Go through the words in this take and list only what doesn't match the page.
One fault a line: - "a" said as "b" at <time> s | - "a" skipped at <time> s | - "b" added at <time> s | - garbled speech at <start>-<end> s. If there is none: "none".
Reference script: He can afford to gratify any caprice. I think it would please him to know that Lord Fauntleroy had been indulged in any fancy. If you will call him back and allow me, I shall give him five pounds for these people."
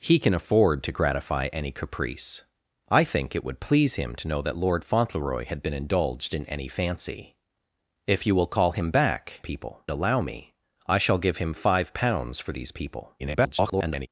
- "and" said as "people" at 9.4 s
- garbled speech at 13.2-14.1 s